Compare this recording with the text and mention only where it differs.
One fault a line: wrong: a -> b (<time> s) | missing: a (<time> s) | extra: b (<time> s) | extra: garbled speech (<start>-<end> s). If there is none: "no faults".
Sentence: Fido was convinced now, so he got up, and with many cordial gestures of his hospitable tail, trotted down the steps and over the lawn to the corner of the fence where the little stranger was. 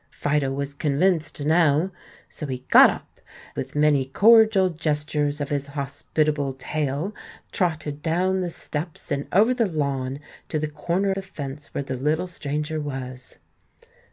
missing: and (3.2 s)
missing: of (11.1 s)